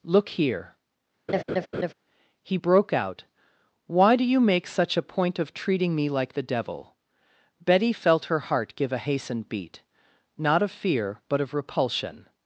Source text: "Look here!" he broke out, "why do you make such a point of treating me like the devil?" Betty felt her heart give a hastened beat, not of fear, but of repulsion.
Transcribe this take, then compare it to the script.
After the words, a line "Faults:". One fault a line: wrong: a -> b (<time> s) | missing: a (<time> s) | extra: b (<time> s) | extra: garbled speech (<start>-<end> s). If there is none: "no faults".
"Look here!" he broke out, "why do you make such a point of treating me like the devil?" Betty felt her heart give a hastened beat, not of fear, but of repulsion.
Faults:
no faults